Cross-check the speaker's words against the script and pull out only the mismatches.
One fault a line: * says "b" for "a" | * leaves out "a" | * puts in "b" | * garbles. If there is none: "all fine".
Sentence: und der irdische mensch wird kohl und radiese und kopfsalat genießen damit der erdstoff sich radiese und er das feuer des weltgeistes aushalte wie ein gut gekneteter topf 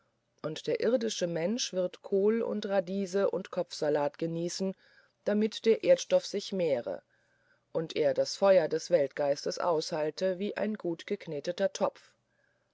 * says "mehre" for "radiese"